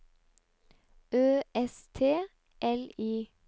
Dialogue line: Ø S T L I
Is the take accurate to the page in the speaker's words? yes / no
yes